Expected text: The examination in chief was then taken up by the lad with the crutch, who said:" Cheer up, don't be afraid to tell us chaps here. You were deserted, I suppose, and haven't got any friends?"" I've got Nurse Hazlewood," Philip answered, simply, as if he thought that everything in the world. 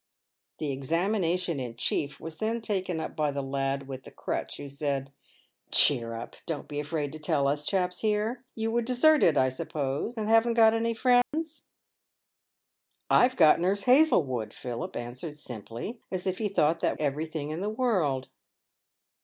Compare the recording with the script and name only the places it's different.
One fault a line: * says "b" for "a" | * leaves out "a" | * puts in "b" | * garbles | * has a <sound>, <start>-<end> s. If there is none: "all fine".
* has a dropout, 11.2-11.3 s